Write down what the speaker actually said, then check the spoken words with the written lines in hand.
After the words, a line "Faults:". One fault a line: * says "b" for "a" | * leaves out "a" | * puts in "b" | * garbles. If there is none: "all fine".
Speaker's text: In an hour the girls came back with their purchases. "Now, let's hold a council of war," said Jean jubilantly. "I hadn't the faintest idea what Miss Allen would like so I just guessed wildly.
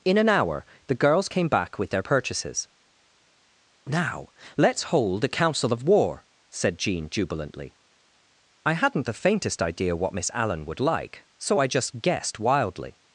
In an hour the girls came back with their purchases. "Now, let's hold a council of war," said Jean jubilantly. "I hadn't the faintest idea what Miss Allen would like so I just guessed wildly.
Faults:
all fine